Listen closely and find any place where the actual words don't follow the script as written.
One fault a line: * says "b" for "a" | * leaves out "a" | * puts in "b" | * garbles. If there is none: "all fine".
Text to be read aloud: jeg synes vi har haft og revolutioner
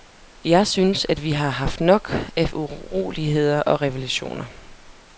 * puts in "at"
* puts in "nok af uroligheder"